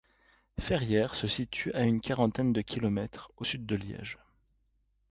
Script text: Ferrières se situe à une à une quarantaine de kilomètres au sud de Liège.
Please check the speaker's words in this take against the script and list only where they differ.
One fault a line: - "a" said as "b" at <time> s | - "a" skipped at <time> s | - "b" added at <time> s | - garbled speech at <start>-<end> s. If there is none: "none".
- "à une" skipped at 2.0 s